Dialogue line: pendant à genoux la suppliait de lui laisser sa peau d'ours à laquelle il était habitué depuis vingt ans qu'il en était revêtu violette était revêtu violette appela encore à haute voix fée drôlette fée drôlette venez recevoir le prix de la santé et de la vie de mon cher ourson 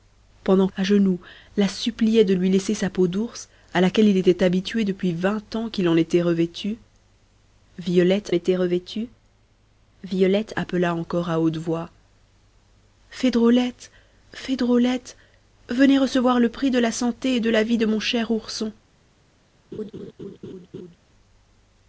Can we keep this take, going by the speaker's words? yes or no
yes